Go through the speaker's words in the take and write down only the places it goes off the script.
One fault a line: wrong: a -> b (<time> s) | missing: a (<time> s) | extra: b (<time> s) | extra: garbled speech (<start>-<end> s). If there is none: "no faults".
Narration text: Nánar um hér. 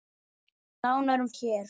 no faults